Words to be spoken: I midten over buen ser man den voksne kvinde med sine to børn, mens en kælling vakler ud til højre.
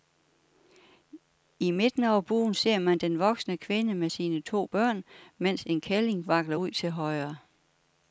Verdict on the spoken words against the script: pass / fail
pass